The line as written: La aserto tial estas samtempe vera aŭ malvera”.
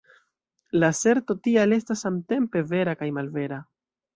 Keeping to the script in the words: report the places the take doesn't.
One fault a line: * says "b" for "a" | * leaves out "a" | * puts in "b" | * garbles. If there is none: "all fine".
* says "kaj" for "aŭ"